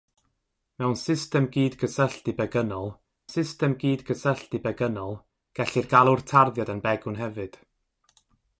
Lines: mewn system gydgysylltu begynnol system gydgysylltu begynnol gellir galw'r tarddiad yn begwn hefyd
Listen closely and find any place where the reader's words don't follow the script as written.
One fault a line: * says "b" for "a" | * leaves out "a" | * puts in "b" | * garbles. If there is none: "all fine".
all fine